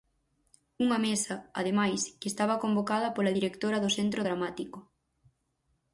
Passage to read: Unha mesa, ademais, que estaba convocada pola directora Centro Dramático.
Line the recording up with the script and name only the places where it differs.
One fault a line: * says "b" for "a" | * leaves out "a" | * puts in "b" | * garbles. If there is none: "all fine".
* puts in "do"